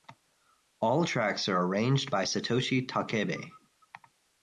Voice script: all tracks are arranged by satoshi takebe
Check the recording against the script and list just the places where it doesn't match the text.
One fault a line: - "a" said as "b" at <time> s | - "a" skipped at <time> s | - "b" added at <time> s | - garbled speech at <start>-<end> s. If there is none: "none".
none